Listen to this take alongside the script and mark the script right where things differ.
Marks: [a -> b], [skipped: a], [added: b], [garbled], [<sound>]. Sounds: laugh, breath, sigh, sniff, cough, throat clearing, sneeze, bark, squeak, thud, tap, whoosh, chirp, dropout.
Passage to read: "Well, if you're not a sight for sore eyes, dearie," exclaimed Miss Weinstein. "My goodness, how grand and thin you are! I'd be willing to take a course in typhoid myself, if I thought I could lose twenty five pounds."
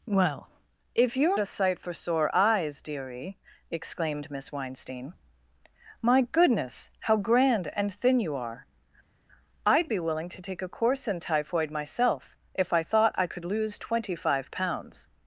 "Well, if you're [skipped: not] a sight for sore eyes, dearie," exclaimed Miss Weinstein. "My goodness, how grand and thin you are! I'd be willing to take a course in typhoid myself, if I thought I could lose twenty five pounds."